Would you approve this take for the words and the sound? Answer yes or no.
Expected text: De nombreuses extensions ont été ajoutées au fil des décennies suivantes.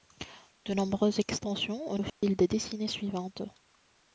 no